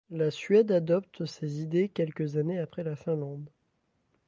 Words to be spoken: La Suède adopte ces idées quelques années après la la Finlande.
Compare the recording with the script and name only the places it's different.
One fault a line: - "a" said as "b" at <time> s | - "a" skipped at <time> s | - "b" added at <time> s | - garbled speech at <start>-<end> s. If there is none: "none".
- "la" skipped at 3.0 s